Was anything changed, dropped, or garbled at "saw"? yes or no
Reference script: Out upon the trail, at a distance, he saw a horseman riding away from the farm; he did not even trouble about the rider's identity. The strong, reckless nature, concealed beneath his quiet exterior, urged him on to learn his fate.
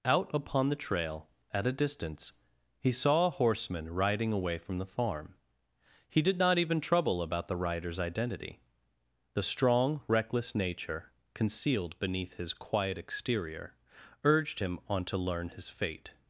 no